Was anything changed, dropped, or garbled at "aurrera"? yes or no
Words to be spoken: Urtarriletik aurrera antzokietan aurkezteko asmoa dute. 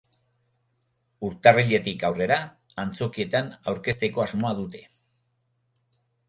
no